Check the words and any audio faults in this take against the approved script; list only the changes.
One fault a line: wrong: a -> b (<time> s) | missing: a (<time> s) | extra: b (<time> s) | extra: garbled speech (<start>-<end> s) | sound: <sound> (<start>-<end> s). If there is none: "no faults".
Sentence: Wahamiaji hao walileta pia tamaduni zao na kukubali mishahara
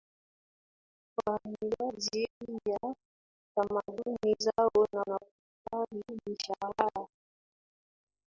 missing: hao walileta (2.3 s)
extra: na (5.1 s)